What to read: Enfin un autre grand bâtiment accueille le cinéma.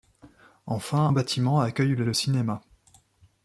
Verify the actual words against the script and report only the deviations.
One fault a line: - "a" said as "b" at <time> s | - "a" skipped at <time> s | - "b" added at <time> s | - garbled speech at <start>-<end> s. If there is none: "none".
- "un autre grand" skipped at 1.1 s
- "le" added at 2.0 s